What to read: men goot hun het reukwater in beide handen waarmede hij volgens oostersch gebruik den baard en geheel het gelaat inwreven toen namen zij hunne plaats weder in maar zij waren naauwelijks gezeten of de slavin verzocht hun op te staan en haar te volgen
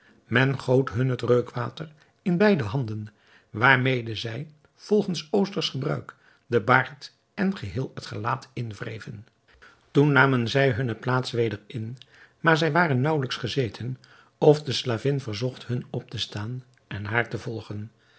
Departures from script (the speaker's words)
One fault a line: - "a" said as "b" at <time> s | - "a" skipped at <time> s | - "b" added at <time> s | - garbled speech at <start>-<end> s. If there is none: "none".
- "hij" said as "zij" at 4.2 s